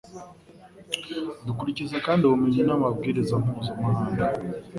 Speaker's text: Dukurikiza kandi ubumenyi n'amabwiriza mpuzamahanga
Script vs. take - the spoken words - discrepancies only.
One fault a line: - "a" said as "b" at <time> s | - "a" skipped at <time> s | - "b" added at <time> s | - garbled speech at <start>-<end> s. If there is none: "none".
none